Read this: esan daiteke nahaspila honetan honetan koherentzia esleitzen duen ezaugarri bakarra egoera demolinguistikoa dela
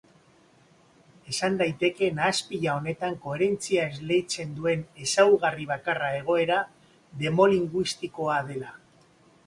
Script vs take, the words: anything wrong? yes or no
yes